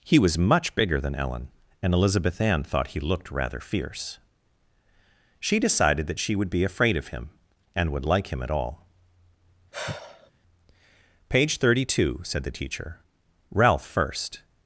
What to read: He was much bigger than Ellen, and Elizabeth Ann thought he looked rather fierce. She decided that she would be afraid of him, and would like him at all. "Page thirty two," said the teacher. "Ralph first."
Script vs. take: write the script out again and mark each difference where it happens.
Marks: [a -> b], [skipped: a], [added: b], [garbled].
He was much bigger than Ellen, and Elizabeth Ann thought he looked rather fierce. She decided that she would be afraid of him, and would like him at all. "Page thirty two," said the teacher. "Ralph first."